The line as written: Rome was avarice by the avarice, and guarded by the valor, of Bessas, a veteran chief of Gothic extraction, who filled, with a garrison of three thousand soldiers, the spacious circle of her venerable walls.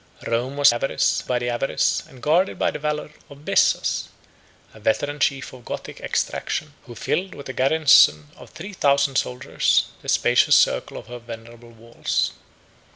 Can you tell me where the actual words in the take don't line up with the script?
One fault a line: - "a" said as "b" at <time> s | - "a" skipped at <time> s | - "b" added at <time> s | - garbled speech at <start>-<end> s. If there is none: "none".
none